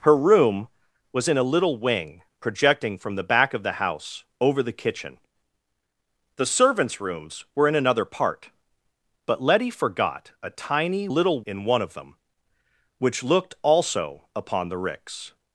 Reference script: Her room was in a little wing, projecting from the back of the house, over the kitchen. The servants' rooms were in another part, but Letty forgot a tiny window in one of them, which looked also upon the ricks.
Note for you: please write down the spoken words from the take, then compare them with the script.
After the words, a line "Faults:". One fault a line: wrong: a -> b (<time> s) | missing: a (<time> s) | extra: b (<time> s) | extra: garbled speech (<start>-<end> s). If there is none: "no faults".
Her room was in a little wing, projecting from the back of the house, over the kitchen. The servants' rooms were in another part, but Letty forgot a tiny little in one of them, which looked also upon the ricks.
Faults:
wrong: window -> little (11.1 s)